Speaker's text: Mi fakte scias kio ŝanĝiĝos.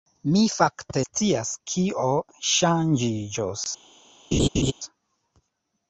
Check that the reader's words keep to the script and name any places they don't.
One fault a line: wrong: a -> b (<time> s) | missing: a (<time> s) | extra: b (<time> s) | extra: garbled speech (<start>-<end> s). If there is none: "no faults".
no faults